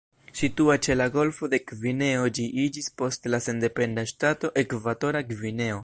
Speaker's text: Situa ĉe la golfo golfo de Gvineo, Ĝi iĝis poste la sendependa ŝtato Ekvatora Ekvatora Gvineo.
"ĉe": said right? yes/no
yes